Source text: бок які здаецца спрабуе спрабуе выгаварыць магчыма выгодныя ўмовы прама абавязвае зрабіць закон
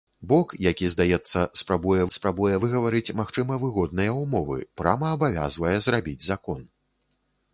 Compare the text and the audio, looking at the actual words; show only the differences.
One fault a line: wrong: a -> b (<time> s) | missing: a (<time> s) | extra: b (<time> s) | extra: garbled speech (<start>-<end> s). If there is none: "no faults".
no faults